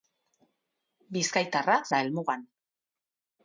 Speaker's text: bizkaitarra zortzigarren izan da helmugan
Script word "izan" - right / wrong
wrong